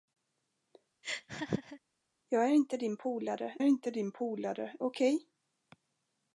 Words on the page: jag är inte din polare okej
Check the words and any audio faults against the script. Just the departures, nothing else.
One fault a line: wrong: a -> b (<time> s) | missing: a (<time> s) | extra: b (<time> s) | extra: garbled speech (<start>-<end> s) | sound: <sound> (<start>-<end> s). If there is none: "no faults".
sound: laugh (1.0-1.8 s)
extra: inte din polare (3.6 s)